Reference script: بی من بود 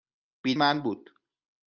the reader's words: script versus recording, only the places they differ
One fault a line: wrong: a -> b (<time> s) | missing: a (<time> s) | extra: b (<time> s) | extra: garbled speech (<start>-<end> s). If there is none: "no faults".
no faults